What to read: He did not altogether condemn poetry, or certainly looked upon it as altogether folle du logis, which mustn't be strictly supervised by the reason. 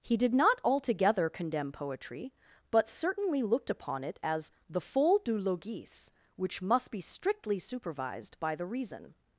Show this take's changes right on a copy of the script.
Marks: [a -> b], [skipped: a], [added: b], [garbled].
He did not altogether condemn poetry, [or -> but] certainly looked upon it as [altogether -> the] folle du logis, which [mustn't -> must] be strictly supervised by the reason.